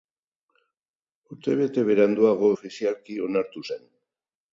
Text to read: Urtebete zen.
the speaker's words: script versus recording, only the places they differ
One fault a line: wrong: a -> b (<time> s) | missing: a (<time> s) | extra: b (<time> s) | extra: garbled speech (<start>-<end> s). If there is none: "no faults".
extra: beranduago ofizialki onartu (1.9 s)